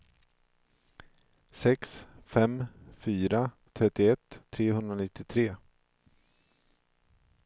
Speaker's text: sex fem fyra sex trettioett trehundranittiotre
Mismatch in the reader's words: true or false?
true